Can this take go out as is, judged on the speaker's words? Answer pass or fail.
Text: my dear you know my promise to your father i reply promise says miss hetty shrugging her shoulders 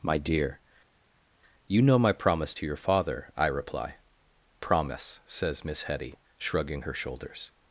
pass